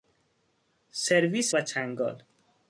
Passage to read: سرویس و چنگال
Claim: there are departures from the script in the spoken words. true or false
false